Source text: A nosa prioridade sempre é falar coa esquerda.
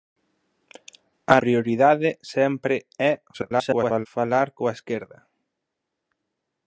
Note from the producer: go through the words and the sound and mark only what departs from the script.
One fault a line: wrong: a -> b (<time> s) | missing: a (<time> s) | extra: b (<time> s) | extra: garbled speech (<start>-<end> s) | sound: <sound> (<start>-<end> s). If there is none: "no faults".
missing: nosa (1.4 s)
extra: garbled speech (3.3-4.1 s)